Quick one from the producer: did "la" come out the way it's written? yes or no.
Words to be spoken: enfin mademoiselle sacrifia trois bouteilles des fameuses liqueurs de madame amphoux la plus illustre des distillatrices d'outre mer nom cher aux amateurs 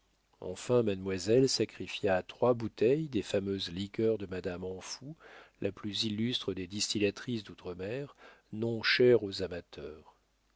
yes